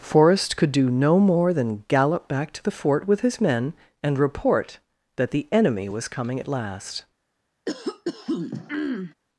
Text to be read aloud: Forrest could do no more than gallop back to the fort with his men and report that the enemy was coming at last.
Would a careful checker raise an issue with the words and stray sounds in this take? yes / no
yes